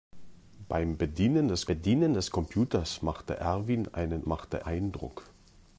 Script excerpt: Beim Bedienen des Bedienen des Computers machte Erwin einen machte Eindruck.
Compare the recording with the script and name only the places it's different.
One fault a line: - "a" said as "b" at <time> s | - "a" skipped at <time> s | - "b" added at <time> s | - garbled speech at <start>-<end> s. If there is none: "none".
none